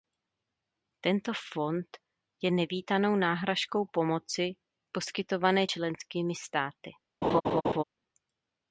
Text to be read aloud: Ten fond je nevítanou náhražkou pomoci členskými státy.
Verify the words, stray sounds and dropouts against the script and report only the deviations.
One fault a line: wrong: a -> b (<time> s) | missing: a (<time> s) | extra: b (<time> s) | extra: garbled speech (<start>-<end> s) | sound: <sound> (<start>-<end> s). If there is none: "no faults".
wrong: Ten -> Tento (1.0 s)
extra: poskytované (4.9 s)
sound: laugh (7.2-7.8 s)